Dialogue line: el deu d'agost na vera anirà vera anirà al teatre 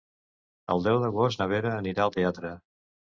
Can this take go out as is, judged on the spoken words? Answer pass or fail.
fail